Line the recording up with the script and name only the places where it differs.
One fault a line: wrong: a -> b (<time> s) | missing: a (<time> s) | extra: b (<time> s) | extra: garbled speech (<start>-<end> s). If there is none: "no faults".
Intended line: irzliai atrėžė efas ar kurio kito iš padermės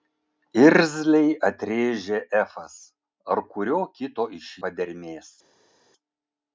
no faults